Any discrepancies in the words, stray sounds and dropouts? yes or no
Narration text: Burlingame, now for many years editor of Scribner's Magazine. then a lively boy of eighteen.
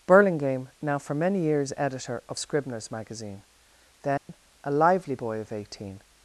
yes